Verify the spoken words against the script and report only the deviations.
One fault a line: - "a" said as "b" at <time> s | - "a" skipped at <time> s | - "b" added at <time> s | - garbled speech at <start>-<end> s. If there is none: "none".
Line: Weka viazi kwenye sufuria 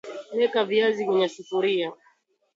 none